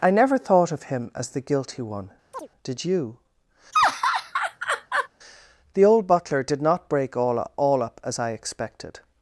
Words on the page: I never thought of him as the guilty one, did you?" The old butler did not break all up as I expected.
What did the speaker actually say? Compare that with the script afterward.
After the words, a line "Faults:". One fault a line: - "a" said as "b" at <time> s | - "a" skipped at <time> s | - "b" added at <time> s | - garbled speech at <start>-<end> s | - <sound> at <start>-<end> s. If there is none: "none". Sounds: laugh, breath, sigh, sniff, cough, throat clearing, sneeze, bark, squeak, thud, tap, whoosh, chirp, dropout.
I never thought of him as the guilty one, did you?" The old butler did not break all all up as I expected.
Faults:
- chirp at 2.3-2.5 s
- laugh at 3.7-5.1 s
- "all" added at 7.6 s